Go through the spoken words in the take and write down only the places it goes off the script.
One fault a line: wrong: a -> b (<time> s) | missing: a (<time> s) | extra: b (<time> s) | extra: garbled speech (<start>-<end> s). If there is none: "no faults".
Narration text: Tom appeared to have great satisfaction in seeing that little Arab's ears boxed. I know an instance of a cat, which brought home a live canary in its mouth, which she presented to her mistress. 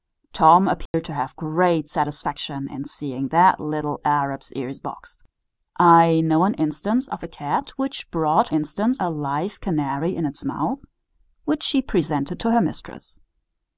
wrong: home -> instance (8.5 s)